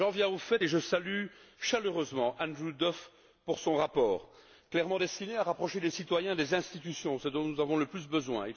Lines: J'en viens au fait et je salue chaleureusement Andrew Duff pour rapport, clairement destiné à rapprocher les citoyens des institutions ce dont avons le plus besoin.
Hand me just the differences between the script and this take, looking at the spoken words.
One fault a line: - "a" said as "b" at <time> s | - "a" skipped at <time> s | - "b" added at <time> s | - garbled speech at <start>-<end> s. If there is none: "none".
- "son" added at 3.6 s
- "nous" added at 7.5 s